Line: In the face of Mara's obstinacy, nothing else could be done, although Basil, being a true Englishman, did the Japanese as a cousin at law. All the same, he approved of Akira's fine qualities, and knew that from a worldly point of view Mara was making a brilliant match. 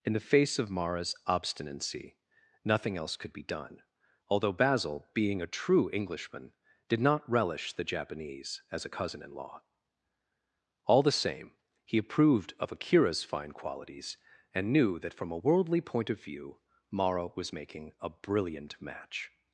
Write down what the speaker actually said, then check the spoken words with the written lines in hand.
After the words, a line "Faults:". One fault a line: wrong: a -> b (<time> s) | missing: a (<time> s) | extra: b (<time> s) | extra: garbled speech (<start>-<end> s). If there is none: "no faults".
In the face of Mara's obstinacy, nothing else could be done, although Basil, being a true Englishman, did not relish the Japanese as a cousin in law. All the same, he approved of Akira's fine qualities, and knew that from a worldly point of view Mara was making a brilliant match.
Faults:
extra: not relish (7.0 s)
wrong: at -> in (9.2 s)